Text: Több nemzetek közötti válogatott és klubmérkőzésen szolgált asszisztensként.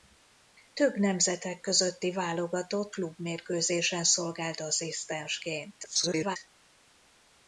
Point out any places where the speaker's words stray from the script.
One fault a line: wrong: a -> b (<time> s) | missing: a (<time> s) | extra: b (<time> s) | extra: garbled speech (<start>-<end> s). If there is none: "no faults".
missing: és (3.0 s)
extra: garbled speech (5.8-6.4 s)